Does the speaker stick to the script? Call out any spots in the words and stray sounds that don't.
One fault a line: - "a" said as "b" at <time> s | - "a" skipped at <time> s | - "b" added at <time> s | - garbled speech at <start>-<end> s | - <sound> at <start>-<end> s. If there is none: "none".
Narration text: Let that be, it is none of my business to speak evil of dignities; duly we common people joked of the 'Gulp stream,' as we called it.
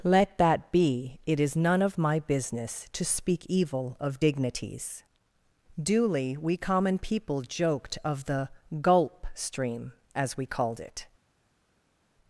none